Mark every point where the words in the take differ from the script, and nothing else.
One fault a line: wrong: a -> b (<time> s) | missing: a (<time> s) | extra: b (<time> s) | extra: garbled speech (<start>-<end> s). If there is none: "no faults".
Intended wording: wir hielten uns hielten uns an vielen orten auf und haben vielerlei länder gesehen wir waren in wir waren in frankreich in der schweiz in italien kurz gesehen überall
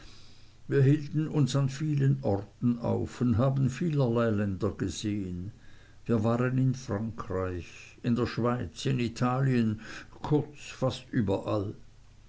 missing: hielten uns (1.6 s)
missing: wir waren in (6.7 s)
wrong: gesehen -> fast (10.7 s)